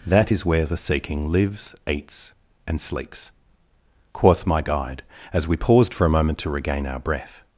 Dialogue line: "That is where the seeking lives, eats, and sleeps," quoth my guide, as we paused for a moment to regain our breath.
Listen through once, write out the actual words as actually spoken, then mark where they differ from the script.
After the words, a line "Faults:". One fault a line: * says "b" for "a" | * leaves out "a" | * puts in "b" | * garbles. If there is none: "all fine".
"That is where the seeking lives, eats, and sleeps," quoth my guide, as we paused for a moment to regain our breath.
Faults:
all fine